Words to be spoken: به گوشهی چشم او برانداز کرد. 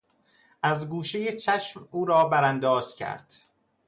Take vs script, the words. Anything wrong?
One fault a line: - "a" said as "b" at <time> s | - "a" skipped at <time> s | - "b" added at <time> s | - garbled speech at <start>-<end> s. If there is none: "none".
- "به" said as "از" at 0.6 s
- "را" added at 2.0 s